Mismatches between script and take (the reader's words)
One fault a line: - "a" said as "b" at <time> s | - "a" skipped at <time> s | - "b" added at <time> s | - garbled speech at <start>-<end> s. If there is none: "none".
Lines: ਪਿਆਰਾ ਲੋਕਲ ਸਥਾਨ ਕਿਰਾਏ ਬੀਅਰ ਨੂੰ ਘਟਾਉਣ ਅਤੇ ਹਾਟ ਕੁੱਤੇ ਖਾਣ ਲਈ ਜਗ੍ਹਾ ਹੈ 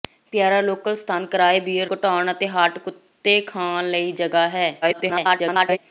- "ਨੂੰ" skipped at 1.9 s
- garbled speech at 4.8-5.8 s